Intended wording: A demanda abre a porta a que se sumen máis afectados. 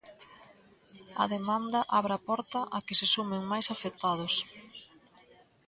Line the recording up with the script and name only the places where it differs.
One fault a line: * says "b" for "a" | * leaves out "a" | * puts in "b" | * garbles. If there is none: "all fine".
all fine